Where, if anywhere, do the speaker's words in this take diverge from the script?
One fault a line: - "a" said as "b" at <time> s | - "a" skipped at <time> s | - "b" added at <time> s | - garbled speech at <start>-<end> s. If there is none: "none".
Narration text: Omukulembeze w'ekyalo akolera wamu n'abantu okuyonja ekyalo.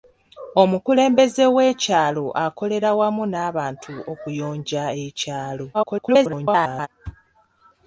- garbled speech at 5.7-6.9 s